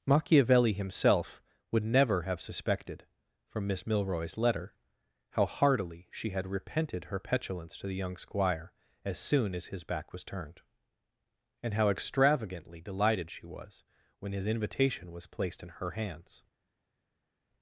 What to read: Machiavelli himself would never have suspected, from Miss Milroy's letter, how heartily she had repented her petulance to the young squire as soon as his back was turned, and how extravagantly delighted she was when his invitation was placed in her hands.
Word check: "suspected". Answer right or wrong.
right